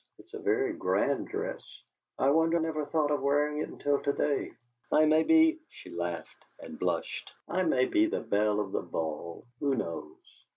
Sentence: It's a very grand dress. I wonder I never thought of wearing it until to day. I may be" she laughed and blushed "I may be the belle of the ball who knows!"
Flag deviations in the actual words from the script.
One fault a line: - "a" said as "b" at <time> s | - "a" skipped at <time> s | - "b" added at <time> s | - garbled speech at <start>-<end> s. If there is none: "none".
- "I" skipped at 2.6 s